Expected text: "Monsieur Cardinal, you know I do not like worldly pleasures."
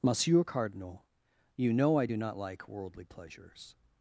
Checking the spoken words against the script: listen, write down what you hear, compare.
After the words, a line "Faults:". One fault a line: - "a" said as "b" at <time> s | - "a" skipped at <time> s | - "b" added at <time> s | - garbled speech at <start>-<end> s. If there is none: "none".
"Monsieur Cardinal, you know I do not like worldly pleasures."
Faults:
none